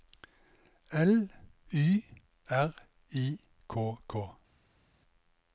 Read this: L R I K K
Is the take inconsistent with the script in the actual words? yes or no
yes